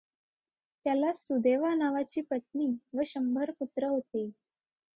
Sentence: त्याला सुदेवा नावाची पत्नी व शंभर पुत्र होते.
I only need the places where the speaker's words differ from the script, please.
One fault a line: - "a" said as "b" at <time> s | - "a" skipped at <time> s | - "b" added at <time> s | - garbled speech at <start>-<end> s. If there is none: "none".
none